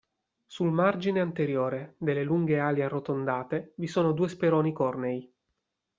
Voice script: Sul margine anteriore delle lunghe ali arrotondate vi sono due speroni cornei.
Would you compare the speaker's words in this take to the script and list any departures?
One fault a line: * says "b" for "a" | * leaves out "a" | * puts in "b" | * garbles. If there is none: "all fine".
all fine